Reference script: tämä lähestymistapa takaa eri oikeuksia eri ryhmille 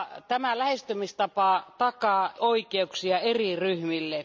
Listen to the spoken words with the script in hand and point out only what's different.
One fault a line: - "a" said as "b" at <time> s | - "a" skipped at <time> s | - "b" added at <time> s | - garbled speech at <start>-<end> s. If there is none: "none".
- "eri" skipped at 2.3 s